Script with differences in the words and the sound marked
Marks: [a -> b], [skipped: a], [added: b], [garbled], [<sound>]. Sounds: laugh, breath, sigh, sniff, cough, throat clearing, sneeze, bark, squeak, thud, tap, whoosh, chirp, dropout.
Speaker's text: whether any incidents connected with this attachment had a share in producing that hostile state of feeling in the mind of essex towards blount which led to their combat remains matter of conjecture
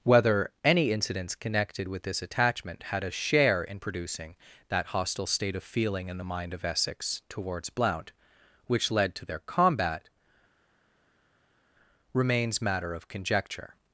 whether any incidents connected with this attachment had a share in producing that hostile state of feeling in the mind of essex towards blount which led to their combat remains matter of conjecture